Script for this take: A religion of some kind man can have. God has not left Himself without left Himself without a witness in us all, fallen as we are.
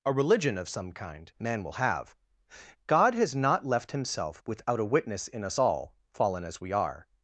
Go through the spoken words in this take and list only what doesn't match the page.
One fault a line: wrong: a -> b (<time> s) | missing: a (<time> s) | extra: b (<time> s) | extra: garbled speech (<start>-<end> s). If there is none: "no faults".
wrong: can -> will (1.6 s)
missing: left Himself without (4.8 s)